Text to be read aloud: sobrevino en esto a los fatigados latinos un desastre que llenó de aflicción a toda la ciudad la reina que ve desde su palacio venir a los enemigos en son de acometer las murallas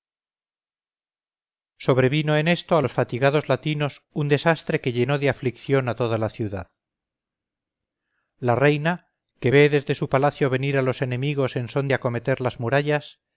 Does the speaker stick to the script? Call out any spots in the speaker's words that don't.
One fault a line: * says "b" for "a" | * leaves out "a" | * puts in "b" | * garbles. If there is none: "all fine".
all fine